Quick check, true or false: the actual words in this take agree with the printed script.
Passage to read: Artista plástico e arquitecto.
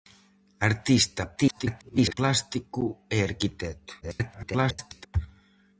false